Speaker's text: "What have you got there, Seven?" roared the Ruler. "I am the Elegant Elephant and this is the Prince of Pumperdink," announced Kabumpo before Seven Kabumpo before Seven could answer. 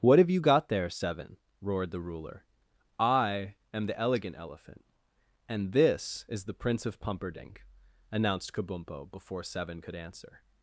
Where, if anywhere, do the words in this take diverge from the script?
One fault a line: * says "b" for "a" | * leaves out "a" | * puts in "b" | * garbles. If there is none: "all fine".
* leaves out "Kabumpo before Seven"